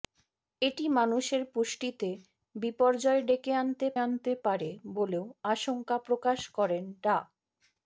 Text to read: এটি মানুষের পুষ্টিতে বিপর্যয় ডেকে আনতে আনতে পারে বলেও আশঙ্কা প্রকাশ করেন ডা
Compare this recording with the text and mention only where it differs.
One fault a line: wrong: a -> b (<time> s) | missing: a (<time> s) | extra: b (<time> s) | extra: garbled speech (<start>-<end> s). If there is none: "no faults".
no faults